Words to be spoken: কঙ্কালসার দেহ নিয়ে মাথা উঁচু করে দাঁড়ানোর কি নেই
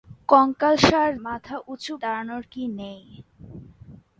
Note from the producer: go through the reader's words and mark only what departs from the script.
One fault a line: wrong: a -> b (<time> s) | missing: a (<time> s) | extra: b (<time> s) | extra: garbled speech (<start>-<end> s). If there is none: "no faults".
missing: দেহ নিয়ে (1.1 s)
missing: করে (1.9 s)